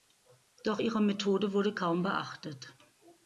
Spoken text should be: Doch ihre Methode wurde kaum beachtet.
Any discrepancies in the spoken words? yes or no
no